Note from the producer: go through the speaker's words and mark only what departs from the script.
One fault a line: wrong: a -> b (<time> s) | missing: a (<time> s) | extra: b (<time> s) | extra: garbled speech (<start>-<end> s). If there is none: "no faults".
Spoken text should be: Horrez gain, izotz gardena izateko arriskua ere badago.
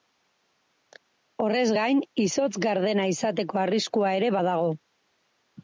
no faults